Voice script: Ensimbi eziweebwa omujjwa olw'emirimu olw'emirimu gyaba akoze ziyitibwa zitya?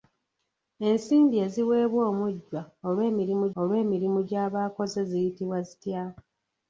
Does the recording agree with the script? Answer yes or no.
yes